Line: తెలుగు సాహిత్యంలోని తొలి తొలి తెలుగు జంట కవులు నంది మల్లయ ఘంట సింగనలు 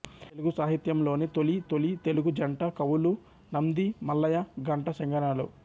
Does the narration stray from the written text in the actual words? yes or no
no